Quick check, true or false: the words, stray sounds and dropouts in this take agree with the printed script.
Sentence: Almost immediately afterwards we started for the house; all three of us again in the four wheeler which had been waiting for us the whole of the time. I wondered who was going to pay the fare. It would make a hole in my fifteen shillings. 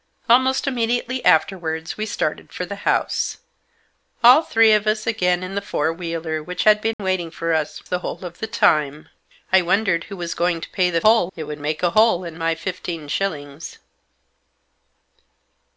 false